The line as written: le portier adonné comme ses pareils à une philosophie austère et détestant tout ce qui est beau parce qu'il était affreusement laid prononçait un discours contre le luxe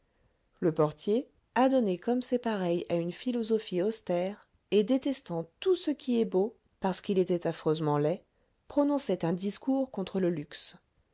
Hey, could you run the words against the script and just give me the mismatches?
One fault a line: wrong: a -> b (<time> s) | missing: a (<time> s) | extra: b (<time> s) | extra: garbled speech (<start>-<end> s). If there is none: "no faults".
no faults